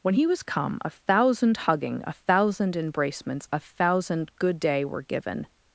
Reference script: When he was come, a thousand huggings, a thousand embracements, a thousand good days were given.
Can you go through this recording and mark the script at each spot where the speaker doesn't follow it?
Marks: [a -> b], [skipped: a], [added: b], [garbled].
When he was come, a thousand [huggings, -> hugging] a thousand embracements, a thousand good [days -> day] were given.